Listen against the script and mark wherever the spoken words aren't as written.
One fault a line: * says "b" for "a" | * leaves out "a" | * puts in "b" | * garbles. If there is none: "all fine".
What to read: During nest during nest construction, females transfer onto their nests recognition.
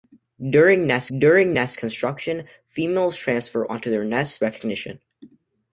all fine